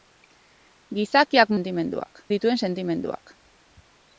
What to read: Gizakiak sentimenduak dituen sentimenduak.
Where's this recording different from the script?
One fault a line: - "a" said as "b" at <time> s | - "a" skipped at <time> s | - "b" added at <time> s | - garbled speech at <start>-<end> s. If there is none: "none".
none